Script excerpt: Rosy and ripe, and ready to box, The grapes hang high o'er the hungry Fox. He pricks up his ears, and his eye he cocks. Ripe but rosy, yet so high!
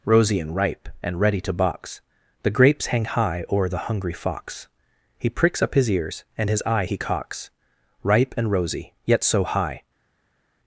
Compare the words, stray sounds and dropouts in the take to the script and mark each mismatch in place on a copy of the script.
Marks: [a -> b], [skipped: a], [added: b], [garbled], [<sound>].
Rosy and ripe, and ready to box, The grapes hang high o'er the hungry Fox. He pricks up his ears, and his eye he cocks. Ripe [but -> and] rosy, yet so high!